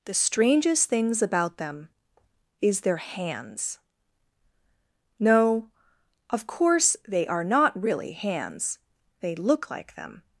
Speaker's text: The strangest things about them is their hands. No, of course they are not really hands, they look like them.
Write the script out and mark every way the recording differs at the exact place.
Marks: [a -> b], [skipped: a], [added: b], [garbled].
The strangest things about them is their hands. No, of course they are not really hands, they look like them.